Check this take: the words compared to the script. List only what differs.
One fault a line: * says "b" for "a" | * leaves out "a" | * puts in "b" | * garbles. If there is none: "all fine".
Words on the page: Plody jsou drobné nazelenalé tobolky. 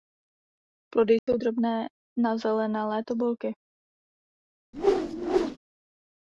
all fine